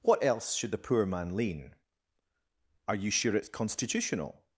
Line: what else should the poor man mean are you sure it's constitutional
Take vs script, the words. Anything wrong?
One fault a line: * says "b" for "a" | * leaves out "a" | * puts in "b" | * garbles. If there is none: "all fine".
* says "lean" for "mean"